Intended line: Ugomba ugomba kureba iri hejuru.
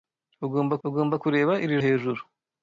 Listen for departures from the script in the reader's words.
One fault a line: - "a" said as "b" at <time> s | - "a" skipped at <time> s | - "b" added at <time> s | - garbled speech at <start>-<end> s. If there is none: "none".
none